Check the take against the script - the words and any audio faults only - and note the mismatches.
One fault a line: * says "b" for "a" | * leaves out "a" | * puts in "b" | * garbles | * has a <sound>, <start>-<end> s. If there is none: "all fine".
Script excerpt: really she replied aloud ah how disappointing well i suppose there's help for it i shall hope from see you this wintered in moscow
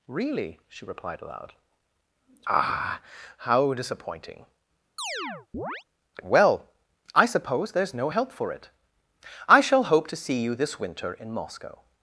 * has a chirp, 5.0-5.8 s
* puts in "no"
* says "to" for "from"
* says "winter" for "wintered"